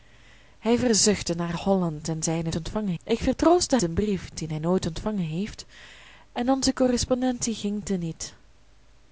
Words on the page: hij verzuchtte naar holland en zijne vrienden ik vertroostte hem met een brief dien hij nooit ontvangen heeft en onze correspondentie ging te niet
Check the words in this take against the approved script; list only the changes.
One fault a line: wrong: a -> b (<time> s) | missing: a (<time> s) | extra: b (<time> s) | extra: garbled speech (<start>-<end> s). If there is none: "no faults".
wrong: vrienden -> ontvangen (2.5 s)
missing: hem met (3.8 s)